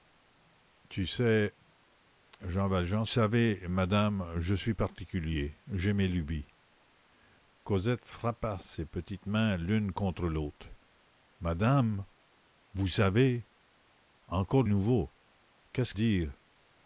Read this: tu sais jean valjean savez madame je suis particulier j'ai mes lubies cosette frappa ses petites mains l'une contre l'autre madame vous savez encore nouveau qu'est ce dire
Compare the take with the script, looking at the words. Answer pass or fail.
pass